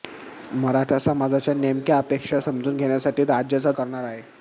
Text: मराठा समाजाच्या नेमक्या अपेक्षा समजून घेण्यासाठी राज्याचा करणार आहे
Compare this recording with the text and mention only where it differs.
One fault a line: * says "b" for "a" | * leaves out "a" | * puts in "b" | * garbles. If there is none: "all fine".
all fine